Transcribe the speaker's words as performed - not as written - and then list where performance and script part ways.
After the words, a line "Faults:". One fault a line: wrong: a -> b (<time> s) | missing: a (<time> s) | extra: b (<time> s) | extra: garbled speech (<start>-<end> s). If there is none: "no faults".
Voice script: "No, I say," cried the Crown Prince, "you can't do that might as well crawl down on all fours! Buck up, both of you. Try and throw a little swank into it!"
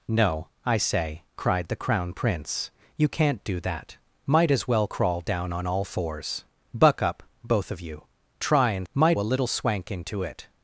"No, I say," cried the Crown Prince, "you can't do that might as well crawl down on all fours! Buck up, both of you. Try and might a little swank into it!"
Faults:
wrong: throw -> might (8.9 s)